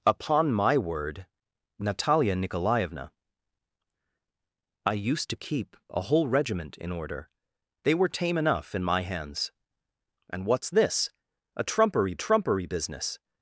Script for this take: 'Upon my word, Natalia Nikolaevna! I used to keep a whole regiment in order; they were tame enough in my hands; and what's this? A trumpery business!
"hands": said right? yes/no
yes